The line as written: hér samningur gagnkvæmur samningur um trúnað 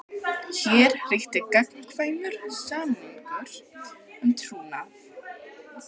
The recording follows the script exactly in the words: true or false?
false